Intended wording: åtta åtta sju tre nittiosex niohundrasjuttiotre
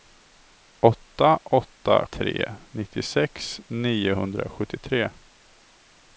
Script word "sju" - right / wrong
wrong